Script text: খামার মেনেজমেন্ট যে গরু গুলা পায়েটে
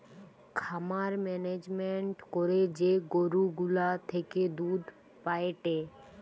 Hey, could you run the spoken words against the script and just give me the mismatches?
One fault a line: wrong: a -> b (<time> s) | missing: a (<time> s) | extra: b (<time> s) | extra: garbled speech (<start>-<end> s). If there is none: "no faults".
extra: করে (2.3 s)
extra: থেকে দুধ (4.1 s)